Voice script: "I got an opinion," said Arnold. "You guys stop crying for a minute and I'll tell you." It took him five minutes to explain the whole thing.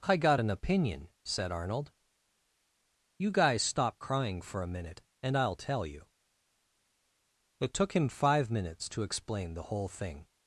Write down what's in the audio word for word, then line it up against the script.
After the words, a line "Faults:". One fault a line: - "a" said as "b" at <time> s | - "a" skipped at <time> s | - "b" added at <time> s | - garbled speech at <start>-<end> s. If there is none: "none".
"I got an opinion," said Arnold. "You guys stop crying for a minute and I'll tell you." It took him five minutes to explain the whole thing.
Faults:
none